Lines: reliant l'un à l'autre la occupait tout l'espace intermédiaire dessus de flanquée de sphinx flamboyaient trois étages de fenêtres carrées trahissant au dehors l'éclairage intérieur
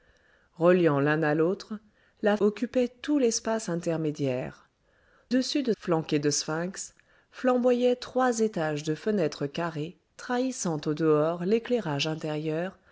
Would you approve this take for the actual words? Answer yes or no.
yes